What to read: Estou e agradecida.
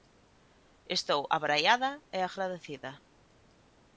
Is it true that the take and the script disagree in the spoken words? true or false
true